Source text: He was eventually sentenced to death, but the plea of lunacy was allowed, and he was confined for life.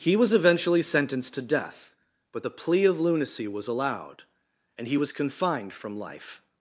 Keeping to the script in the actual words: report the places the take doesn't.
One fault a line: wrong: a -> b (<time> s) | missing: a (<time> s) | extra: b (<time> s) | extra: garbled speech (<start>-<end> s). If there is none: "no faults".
wrong: for -> from (5.7 s)